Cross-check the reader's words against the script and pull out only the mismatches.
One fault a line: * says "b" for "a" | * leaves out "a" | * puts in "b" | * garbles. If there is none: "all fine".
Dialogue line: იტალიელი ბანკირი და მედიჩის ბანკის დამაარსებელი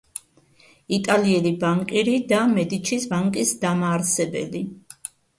all fine